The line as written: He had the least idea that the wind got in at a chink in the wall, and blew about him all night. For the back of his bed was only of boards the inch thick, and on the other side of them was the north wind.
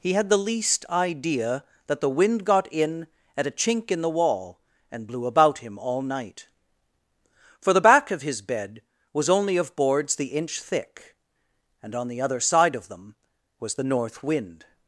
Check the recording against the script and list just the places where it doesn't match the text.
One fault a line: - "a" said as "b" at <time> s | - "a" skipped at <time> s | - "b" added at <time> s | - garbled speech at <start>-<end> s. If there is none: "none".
none